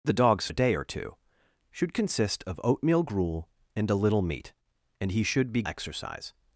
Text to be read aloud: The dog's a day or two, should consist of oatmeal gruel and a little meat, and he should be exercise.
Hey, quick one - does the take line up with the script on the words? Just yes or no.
yes